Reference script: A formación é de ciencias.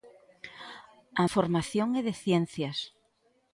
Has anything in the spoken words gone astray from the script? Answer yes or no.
no